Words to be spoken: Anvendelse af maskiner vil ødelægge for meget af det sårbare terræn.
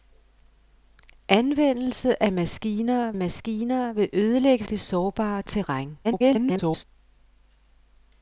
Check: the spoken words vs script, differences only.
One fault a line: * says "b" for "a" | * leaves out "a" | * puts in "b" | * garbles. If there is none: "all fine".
* puts in "maskiner"
* leaves out "for meget af"
* garbles